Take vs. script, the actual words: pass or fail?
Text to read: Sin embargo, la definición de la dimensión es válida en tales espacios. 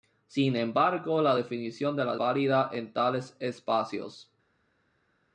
fail